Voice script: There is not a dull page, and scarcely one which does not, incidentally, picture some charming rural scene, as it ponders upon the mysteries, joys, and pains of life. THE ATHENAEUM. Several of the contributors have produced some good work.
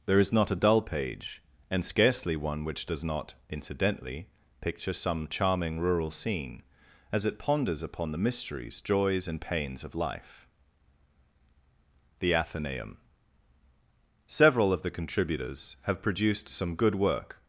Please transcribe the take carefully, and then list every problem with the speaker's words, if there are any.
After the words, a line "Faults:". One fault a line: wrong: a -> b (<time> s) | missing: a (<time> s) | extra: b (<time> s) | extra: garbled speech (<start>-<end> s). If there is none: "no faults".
There is not a dull page, and scarcely one which does not, incidentally, picture some charming rural scene, as it ponders upon the mysteries, joys, and pains of life. THE ATHENAEUM. Several of the contributors have produced some good work.
Faults:
no faults